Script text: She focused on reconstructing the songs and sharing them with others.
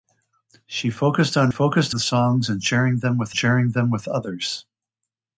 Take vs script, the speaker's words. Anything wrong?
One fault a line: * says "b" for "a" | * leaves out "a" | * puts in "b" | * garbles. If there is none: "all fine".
* says "focused" for "reconstructing"
* puts in "sharing them with"